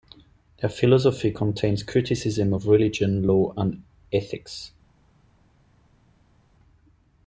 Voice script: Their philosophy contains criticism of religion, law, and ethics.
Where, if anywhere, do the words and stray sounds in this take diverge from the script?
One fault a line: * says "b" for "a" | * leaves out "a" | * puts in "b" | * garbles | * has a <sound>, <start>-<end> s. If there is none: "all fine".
all fine